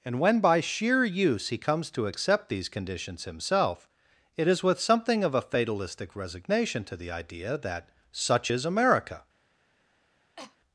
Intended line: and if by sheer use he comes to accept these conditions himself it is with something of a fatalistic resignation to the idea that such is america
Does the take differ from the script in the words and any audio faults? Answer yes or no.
yes